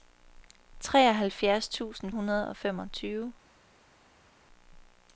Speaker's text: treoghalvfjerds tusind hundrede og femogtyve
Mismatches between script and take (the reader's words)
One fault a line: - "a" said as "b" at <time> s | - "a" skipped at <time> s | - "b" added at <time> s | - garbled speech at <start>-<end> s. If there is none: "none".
none